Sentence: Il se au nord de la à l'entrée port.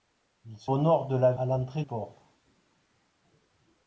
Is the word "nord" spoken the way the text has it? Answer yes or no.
yes